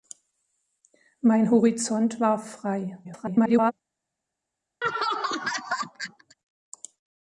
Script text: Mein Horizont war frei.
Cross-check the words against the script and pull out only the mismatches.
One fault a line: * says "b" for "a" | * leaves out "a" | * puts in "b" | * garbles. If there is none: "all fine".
* garbles